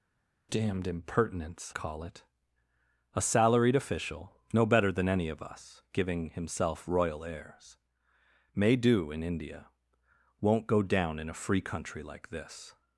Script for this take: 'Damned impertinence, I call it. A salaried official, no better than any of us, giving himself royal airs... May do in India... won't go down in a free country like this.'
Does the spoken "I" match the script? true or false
false